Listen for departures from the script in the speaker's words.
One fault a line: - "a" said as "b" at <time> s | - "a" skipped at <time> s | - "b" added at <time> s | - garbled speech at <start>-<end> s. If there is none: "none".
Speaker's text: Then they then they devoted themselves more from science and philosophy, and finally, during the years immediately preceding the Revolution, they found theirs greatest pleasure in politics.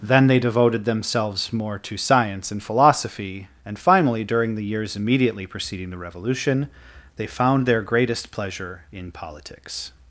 - "then they" skipped at 0.4 s
- "from" said as "to" at 1.8 s
- "theirs" said as "their" at 7.7 s